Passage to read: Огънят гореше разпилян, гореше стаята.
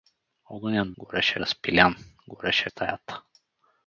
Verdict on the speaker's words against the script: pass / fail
pass